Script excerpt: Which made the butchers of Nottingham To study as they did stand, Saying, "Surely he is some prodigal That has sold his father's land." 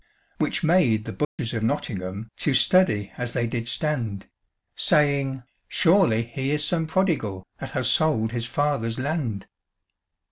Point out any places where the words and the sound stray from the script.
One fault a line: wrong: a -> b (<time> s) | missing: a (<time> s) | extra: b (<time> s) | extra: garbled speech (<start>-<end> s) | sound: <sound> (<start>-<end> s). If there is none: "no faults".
sound: dropout (1.2-1.4 s)